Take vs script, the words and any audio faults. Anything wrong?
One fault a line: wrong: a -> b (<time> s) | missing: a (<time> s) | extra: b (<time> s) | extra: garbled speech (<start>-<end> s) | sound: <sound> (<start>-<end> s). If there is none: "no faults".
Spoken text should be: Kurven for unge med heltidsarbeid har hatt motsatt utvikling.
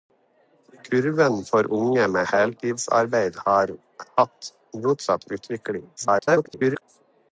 extra: garbled speech (6.0-6.8 s)